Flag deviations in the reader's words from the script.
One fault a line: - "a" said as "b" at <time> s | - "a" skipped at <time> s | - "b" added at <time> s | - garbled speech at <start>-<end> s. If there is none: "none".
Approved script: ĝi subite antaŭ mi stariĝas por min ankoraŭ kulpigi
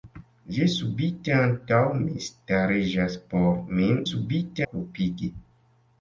- "ankoraŭ" said as "subite" at 4.1 s